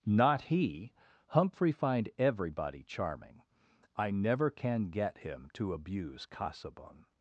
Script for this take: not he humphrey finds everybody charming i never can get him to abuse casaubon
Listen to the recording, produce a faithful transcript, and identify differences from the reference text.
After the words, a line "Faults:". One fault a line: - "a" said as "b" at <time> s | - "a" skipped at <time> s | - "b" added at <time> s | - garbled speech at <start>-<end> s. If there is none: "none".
not he humphrey find everybody charming i never can get him to abuse casaubon
Faults:
- "finds" said as "find" at 1.7 s